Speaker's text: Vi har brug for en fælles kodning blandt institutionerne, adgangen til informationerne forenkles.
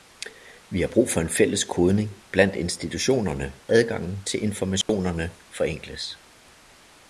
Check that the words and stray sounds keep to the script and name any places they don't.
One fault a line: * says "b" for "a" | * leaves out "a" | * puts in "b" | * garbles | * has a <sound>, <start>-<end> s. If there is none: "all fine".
* has a dropout, 4.8-4.9 s